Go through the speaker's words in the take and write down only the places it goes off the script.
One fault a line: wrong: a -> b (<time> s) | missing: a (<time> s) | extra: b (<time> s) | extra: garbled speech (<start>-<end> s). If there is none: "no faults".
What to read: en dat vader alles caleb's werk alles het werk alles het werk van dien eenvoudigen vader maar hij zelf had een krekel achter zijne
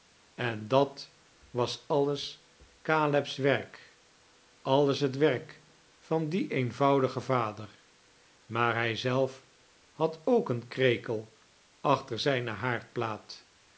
wrong: vader -> was (1.5 s)
missing: alles het werk (5.6 s)
extra: ook (10.2 s)